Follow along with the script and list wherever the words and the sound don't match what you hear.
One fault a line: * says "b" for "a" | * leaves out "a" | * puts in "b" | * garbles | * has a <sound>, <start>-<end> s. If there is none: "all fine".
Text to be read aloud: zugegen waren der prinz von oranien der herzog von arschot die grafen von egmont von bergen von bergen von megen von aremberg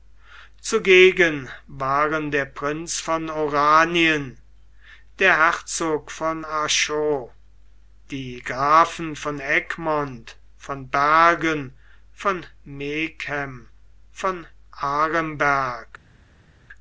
* leaves out "bergen von"